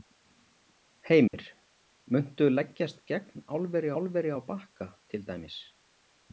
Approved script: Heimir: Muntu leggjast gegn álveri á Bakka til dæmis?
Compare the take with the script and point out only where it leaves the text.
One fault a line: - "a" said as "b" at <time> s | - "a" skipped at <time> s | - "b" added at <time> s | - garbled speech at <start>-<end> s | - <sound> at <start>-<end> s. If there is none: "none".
- dropout at 1.3-1.3 s
- "álveri" added at 4.0 s